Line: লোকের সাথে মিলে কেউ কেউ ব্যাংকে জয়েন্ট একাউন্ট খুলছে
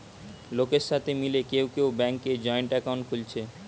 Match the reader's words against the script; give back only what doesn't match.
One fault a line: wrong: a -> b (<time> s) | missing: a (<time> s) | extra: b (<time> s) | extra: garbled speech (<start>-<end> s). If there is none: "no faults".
no faults